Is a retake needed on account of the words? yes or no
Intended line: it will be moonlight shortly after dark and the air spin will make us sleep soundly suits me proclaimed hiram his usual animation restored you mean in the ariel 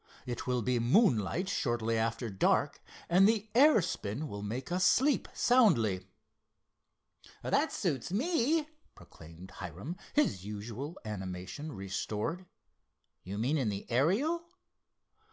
yes